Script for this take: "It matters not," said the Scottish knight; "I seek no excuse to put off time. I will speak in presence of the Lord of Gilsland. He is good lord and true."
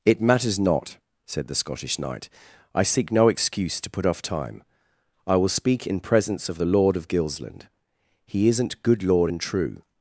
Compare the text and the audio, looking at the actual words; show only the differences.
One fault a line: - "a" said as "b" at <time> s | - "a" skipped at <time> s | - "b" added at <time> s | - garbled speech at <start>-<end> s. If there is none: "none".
- "is" said as "isn't" at 8.5 s